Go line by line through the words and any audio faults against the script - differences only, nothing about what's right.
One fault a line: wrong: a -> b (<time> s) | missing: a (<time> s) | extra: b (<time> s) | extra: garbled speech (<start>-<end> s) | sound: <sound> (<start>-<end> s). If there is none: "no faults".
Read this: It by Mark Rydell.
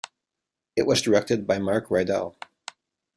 extra: was directed (0.9 s)